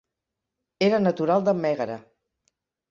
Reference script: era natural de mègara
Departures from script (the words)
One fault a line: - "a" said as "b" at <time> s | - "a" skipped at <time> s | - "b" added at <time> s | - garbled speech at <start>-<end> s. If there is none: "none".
none